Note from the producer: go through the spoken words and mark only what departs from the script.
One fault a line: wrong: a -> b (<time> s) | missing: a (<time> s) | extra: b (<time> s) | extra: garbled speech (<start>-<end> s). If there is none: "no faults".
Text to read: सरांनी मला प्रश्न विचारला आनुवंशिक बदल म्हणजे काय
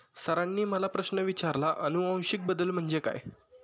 no faults